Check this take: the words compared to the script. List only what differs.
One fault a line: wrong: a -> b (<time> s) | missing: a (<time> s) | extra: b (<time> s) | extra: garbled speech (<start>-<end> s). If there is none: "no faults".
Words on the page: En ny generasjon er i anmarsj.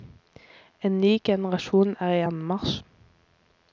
no faults